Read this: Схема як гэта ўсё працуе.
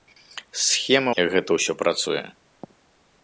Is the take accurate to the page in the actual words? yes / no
yes